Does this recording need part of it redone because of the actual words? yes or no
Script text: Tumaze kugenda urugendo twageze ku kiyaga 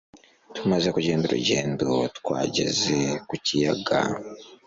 no